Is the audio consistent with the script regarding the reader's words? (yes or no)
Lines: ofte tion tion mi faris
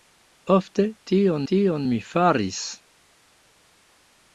yes